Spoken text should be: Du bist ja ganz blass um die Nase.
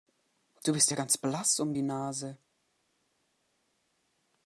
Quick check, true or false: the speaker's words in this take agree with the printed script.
true